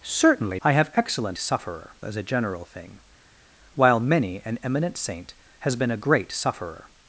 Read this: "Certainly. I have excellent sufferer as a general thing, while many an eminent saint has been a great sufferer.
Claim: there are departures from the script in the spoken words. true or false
false